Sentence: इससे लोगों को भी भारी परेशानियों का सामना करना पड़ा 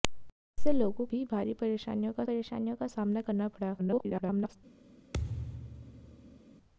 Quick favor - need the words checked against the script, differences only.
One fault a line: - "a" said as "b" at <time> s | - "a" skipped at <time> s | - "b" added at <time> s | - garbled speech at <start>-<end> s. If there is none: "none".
- "को" skipped at 1.1 s
- "परेशानियों का" added at 2.2 s
- garbled speech at 3.8-4.6 s